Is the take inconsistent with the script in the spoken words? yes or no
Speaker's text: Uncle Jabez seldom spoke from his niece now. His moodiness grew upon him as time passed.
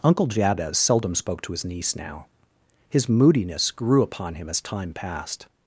yes